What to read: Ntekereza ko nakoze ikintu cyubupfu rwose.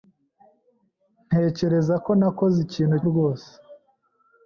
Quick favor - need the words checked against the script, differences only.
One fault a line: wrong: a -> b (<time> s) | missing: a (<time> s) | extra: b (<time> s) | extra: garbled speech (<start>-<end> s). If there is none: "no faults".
missing: cyubupfu (3.0 s)